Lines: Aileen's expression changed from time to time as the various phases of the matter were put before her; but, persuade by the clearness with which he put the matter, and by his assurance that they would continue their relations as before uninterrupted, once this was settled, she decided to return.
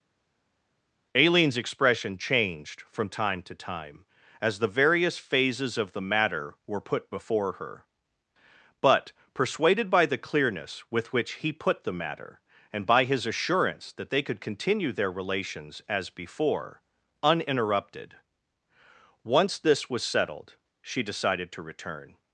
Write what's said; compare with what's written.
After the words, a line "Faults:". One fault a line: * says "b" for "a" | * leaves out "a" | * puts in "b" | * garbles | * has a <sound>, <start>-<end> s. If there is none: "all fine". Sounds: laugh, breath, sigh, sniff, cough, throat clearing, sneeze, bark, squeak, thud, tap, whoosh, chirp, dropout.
Aileen's expression changed from time to time as the various phases of the matter were put before her; but, persuaded by the clearness with which he put the matter, and by his assurance that they could continue their relations as before uninterrupted, once this was settled, she decided to return.
Faults:
* says "persuaded" for "persuade"
* says "could" for "would"